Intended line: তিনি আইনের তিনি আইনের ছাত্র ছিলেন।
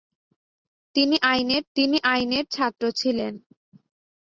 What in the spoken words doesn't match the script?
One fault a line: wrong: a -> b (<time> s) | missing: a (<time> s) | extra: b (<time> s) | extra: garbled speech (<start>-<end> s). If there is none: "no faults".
no faults